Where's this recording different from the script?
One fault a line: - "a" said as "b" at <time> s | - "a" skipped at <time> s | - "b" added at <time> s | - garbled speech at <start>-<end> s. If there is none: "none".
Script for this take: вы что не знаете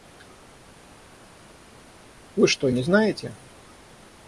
none